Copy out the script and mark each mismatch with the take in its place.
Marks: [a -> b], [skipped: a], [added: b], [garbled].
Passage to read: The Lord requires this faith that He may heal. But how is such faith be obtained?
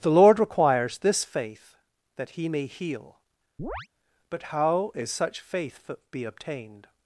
The Lord requires this faith that He may heal. But how is such faith be obtained?